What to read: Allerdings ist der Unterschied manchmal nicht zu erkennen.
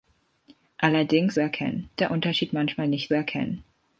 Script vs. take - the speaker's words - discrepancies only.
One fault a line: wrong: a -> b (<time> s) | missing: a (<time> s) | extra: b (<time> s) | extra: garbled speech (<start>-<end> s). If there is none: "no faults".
wrong: ist -> erkennen (1.4 s)
missing: zu (3.1 s)